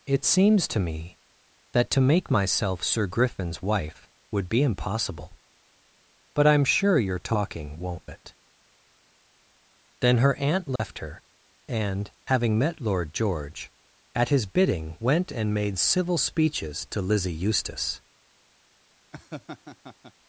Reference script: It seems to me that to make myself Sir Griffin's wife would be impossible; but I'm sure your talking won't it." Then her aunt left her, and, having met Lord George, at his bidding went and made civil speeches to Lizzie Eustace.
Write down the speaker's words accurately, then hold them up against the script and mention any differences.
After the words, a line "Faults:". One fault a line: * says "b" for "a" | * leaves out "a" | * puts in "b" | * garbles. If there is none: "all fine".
It seems to me that to make myself Sir Griffin's wife would be impossible; but I'm sure your talking won't it." Then her aunt left her, and, having met Lord George, at his bidding went and made civil speeches to Lizzie Eustace.
Faults:
all fine